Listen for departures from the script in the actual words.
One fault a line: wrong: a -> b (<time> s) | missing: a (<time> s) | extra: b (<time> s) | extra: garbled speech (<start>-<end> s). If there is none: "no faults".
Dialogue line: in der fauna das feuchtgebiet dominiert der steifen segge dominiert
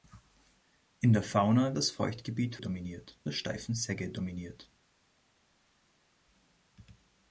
no faults